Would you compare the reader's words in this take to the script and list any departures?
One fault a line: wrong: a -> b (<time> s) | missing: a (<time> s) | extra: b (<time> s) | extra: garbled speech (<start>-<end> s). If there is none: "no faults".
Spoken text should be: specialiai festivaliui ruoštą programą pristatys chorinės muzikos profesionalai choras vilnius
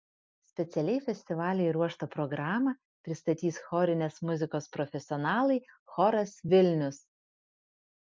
no faults